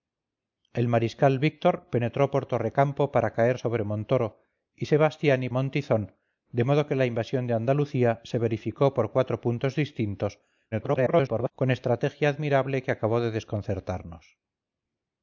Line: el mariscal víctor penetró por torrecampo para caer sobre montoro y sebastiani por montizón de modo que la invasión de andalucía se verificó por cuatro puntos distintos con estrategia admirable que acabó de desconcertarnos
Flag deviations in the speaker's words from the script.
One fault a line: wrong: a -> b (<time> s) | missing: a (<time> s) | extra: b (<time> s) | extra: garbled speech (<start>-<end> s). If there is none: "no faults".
missing: por (5.5 s)
extra: garbled speech (10.7-11.5 s)